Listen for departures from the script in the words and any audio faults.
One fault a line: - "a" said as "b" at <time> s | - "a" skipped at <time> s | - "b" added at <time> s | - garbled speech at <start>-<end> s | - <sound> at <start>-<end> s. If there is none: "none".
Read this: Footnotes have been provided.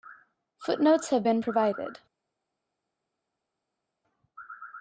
none